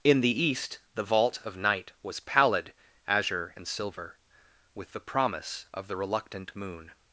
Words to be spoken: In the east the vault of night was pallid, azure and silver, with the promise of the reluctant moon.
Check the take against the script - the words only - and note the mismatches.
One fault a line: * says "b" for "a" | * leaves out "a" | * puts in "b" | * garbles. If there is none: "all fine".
all fine